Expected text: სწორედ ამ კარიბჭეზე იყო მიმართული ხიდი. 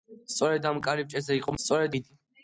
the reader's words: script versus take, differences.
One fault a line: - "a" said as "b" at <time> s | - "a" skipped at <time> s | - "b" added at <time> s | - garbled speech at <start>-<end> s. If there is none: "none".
- "მიმართული" said as "სწორედ" at 1.6 s